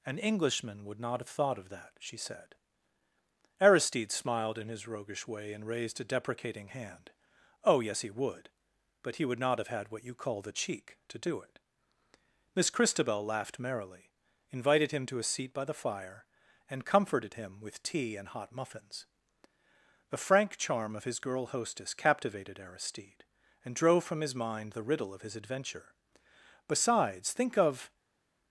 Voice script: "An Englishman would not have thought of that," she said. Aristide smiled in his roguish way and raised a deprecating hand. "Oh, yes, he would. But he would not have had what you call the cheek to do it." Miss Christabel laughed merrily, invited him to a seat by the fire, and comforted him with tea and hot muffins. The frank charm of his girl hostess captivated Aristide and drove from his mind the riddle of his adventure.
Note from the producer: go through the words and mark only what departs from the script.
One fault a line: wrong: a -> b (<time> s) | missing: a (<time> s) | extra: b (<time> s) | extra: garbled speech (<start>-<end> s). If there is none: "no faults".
extra: Besides think of (26.7 s)